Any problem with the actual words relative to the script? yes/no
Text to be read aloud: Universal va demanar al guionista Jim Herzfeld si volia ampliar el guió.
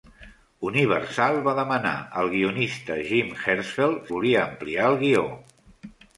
yes